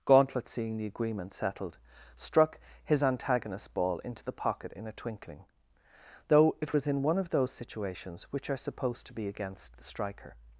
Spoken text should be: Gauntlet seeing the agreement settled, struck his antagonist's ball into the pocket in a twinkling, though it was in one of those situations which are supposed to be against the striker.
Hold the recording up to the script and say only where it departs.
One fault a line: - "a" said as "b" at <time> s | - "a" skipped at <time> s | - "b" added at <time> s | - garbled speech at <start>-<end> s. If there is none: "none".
none